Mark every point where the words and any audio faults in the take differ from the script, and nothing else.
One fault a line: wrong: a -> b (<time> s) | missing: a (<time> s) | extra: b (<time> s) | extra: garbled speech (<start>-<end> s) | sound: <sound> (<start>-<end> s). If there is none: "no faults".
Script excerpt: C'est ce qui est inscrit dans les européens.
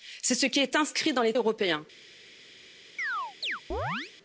sound: chirp (3.0-4.1 s)